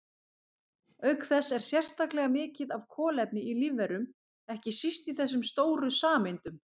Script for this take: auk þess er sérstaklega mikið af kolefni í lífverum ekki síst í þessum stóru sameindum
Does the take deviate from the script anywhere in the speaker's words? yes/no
no